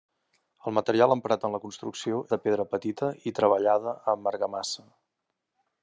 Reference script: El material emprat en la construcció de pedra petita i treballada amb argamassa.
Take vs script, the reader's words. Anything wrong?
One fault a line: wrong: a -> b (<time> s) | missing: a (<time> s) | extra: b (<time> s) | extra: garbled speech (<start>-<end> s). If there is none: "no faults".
no faults